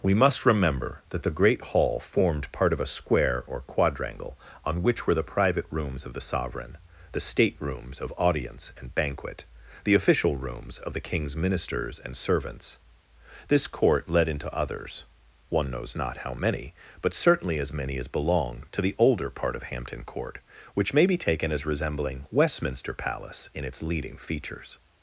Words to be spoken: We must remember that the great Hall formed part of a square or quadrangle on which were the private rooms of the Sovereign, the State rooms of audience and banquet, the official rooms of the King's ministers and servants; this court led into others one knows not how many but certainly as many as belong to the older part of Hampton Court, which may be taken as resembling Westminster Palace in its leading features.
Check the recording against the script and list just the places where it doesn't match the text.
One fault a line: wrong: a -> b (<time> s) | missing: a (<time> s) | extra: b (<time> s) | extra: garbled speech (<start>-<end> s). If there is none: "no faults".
no faults